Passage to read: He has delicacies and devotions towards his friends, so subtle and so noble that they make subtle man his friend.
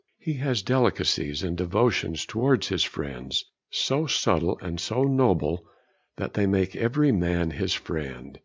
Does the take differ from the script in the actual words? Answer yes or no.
yes